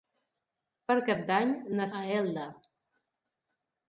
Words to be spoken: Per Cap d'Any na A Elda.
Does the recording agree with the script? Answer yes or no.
yes